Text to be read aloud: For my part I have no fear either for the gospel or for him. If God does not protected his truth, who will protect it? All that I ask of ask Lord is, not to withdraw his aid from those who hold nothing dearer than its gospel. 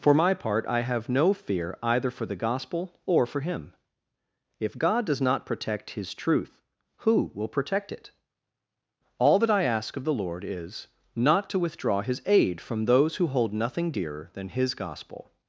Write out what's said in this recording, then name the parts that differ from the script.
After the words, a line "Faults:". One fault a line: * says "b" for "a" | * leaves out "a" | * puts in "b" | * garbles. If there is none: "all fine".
For my part I have no fear either for the gospel or for him. If God does not protect his truth, who will protect it? All that I ask of the Lord is, not to withdraw his aid from those who hold nothing dearer than his gospel.
Faults:
* says "protect" for "protected"
* says "the" for "ask"
* says "his" for "its"